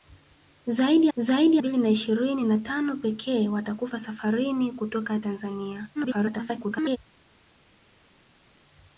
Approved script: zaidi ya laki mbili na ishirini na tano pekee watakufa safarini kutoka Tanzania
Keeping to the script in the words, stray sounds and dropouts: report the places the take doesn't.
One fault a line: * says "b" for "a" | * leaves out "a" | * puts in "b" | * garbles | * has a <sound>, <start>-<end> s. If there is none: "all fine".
* says "zaidi" for "laki"
* garbles